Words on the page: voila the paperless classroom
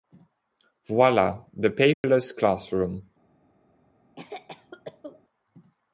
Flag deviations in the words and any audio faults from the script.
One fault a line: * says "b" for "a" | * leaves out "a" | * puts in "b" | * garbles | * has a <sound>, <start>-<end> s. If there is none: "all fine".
* has a dropout, 1.9-2.0 s
* has a cough, 4.2-5.2 s